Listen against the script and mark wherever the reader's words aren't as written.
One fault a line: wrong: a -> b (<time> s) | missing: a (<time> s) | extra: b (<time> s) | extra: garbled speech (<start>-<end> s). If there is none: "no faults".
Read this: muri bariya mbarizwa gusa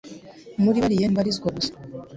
no faults